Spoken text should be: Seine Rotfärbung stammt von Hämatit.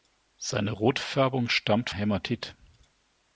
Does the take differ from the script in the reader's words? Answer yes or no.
yes